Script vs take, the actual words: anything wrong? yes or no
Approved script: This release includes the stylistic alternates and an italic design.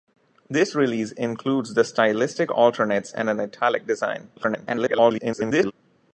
yes